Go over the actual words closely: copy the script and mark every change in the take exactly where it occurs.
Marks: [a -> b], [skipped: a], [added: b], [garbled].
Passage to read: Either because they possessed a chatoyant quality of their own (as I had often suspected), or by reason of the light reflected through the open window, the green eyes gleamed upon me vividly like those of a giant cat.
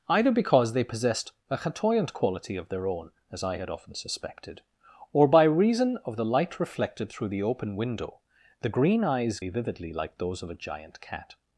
Either because they possessed a chatoyant quality of their own (as I had often suspected), or by reason of the light reflected through the open window, the green eyes [skipped: gleamed upon] me vividly like those of a giant cat.